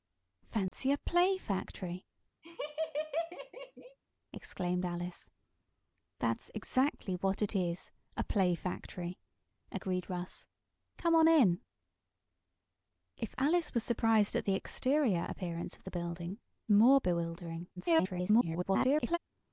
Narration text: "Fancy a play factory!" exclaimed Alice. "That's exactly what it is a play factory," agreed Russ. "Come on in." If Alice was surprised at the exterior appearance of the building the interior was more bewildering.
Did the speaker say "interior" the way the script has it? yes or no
no